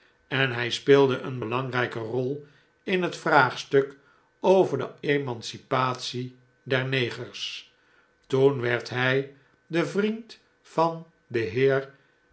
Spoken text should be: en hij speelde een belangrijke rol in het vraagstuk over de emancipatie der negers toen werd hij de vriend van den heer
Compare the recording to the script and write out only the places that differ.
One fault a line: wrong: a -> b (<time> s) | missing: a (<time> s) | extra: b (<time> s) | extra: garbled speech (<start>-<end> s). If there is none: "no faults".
no faults